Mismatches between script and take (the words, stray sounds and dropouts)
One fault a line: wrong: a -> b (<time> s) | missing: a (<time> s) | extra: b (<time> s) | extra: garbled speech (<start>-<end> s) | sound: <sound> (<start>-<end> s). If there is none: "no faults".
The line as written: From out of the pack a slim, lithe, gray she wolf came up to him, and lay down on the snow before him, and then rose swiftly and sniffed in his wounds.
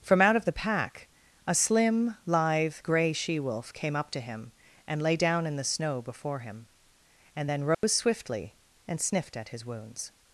wrong: on -> in (5.5 s)
sound: dropout (7.7-7.8 s)
wrong: in -> at (9.4 s)